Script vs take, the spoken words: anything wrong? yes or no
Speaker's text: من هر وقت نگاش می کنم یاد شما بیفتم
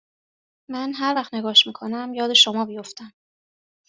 no